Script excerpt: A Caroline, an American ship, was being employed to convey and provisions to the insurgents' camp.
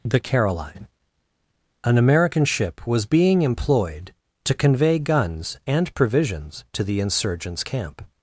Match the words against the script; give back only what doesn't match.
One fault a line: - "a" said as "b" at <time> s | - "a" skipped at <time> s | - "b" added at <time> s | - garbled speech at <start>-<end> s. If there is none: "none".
- "A" said as "The" at 0.0 s
- "guns" added at 5.0 s